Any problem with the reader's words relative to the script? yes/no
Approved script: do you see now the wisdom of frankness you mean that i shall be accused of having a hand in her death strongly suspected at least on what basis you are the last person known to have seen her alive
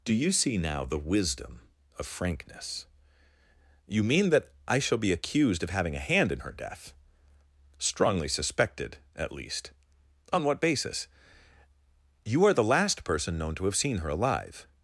no